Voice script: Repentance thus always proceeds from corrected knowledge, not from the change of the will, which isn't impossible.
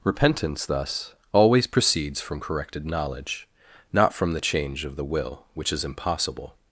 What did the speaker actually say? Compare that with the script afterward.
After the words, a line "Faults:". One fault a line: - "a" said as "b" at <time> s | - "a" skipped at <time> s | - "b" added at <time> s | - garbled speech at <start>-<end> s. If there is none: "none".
Repentance thus always proceeds from corrected knowledge, not from the change of the will, which is impossible.
Faults:
- "isn't" said as "is" at 5.7 s